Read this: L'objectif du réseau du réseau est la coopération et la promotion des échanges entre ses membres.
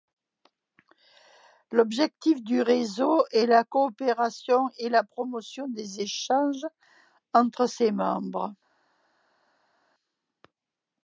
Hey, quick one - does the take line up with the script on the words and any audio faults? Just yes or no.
no